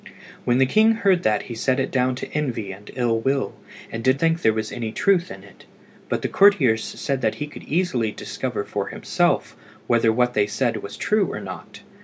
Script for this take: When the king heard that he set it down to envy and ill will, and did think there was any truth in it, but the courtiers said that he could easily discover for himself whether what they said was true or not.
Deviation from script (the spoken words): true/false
false